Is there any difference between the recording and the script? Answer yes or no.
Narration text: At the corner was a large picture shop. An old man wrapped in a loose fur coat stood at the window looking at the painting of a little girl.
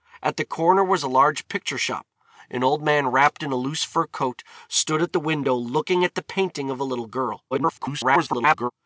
yes